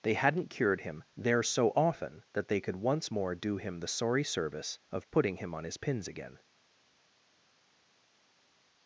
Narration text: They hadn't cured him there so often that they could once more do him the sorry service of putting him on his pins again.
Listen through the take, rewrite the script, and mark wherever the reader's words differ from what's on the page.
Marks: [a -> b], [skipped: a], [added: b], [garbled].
They hadn't cured him there so often that they could once more do him the sorry service of putting him on his pins again.